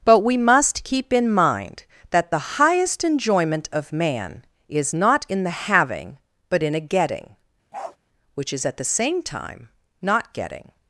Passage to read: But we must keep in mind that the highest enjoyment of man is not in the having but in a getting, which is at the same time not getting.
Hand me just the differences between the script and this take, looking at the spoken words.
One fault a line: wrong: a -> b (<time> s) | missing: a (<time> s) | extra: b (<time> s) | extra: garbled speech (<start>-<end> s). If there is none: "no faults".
no faults